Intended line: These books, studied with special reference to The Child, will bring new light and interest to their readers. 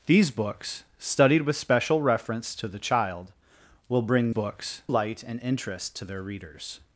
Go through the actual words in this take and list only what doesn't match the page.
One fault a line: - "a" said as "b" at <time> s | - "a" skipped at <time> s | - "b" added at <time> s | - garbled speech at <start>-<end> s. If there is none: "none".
- "new" said as "books" at 4.3 s